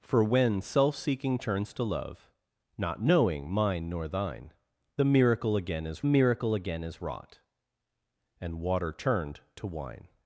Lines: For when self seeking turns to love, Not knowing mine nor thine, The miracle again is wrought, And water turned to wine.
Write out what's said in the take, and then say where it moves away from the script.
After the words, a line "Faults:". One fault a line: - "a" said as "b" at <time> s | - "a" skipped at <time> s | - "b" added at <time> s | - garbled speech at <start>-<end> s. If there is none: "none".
For when self seeking turns to love, Not knowing mine nor thine, The miracle again is miracle again is wrought, And water turned to wine.
Faults:
- "miracle again is" added at 6.1 s